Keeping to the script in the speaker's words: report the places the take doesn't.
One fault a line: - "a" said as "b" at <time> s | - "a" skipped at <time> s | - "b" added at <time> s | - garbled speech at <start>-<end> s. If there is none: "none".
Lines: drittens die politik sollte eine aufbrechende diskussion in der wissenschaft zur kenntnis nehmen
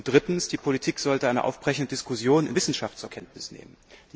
- "der" skipped at 2.5 s